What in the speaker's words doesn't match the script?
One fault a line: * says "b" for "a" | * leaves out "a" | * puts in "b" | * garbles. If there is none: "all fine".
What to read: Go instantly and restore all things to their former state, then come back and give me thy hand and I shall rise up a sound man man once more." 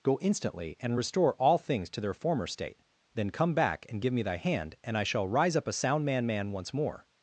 all fine